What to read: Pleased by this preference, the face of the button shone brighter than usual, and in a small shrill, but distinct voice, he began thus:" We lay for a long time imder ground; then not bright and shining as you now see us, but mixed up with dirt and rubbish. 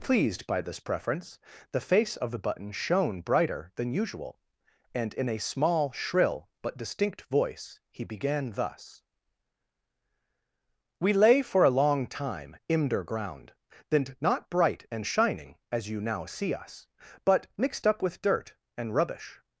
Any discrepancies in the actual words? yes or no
no